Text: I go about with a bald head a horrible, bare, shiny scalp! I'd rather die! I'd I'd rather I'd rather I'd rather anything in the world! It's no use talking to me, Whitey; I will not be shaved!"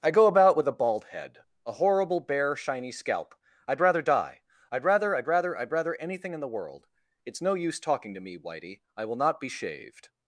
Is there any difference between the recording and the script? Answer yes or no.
yes